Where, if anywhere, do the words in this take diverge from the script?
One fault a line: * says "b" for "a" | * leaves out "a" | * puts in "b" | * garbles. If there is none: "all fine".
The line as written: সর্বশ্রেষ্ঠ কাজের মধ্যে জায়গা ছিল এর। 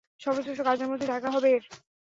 * says "হবে" for "ছিল"